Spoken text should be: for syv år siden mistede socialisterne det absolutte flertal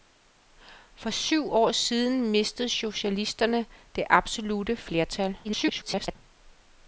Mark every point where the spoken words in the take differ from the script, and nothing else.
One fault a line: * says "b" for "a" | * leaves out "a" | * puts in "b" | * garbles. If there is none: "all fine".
* garbles